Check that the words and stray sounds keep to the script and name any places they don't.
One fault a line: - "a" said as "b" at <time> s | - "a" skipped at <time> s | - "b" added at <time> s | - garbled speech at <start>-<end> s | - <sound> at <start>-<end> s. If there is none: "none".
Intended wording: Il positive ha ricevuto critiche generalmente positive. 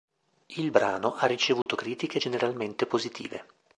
- "positive" said as "brano" at 0.7 s
- dropout at 1.6-1.7 s